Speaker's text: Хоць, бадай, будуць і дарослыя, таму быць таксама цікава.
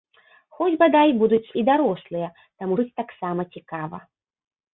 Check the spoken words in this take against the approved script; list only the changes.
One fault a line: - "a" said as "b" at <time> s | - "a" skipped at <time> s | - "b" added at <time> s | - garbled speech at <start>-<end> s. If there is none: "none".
none